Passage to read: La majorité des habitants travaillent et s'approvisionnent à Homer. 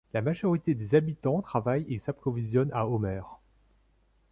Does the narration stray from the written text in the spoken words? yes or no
no